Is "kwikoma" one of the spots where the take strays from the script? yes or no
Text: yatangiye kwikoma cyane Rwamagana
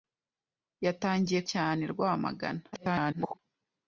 yes